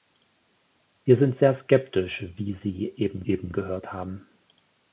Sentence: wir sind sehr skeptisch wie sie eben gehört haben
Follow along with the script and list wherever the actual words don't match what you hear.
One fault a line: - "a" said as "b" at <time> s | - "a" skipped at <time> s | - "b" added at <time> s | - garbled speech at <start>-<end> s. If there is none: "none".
- "eben" added at 3.2 s